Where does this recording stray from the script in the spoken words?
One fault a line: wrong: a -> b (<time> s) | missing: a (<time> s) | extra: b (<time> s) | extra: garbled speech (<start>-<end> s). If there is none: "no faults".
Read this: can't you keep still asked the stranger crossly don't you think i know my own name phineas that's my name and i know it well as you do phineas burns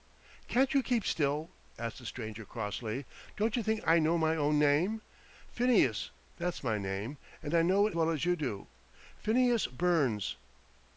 no faults